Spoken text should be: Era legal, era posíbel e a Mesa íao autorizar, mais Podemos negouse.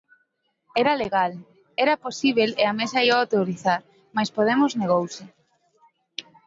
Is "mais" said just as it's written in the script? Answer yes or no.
yes